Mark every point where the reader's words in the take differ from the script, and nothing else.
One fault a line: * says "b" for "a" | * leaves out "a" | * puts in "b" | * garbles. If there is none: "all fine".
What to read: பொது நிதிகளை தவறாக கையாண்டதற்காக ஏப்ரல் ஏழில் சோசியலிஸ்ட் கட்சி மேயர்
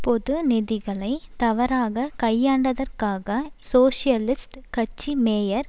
* leaves out "ஏப்ரல் ஏழில்"